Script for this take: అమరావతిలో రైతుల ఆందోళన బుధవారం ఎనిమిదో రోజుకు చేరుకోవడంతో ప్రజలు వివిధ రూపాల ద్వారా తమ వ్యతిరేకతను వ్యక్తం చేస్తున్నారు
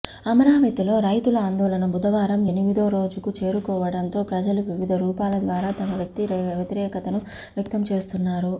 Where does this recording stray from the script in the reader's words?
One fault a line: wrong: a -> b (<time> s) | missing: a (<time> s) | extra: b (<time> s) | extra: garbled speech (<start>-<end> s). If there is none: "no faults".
no faults